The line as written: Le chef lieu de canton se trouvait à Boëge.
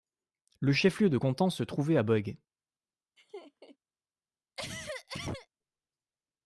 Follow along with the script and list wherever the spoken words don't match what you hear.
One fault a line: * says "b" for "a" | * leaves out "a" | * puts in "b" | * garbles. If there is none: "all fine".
all fine